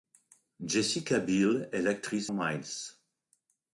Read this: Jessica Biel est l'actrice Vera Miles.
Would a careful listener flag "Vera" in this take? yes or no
yes